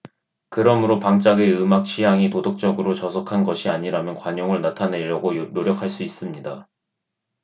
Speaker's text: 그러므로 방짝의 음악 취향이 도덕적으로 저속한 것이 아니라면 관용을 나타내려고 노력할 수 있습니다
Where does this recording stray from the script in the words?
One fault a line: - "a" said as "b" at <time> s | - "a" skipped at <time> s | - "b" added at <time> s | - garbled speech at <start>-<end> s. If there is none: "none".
none